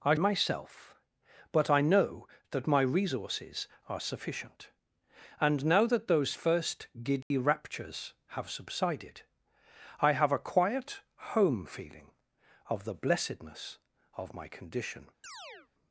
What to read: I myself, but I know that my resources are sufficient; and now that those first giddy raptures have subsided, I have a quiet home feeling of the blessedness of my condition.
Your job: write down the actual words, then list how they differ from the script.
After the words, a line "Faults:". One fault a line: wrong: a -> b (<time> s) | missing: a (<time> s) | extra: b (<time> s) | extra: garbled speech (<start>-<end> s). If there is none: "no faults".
I myself, but I know that my resources are sufficient; and now that those first giddy raptures have subsided, I have a quiet home feeling of the blessedness of my condition.
Faults:
no faults